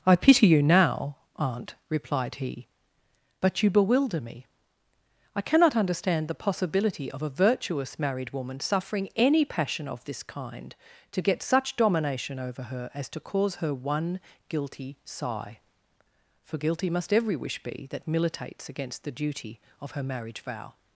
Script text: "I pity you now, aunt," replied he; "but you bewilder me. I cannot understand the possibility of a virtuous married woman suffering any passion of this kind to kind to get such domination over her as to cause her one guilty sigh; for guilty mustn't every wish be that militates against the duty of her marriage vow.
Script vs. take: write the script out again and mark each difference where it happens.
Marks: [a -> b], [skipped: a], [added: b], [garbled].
"I pity you now, aunt," replied he; "but you bewilder me. I cannot understand the possibility of a virtuous married woman suffering any passion of this kind to [skipped: kind to] get such domination over her as to cause her one guilty sigh; for guilty [mustn't -> must] every wish be that militates against the duty of her marriage vow.